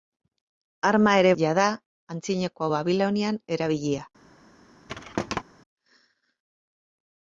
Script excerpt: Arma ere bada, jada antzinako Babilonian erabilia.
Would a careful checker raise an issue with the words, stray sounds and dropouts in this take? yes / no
yes